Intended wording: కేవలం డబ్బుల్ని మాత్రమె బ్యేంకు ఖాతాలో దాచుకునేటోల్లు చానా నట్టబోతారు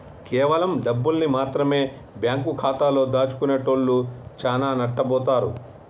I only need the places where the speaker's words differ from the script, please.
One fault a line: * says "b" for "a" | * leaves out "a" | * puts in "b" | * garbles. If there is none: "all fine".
all fine